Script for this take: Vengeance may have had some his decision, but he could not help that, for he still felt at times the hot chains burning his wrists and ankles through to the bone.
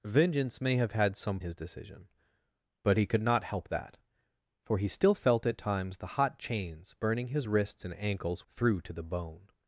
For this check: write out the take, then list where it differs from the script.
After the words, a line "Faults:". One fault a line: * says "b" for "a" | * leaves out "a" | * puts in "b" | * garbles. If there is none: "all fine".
Vengeance may have had some his decision, but he could not help that, for he still felt at times the hot chains burning his wrists and ankles through to the bone.
Faults:
all fine